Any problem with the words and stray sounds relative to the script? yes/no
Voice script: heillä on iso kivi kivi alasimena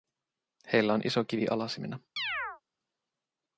yes